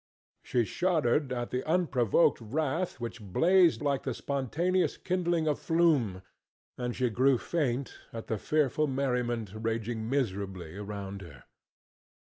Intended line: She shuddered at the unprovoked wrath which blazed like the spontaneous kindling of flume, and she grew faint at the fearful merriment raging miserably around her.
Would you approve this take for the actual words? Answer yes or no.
yes